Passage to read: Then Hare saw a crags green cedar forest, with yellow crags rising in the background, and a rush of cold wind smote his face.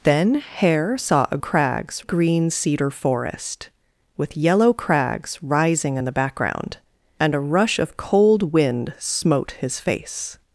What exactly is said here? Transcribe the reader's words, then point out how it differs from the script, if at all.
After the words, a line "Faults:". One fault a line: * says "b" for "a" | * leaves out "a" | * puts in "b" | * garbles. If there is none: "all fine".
Then Hare saw a crags green cedar forest, with yellow crags rising in the background, and a rush of cold wind smote his face.
Faults:
all fine